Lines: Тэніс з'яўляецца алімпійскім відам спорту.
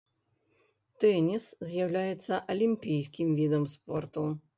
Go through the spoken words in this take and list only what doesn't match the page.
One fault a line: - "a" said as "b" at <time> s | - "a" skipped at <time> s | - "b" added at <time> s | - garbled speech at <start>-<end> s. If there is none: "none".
none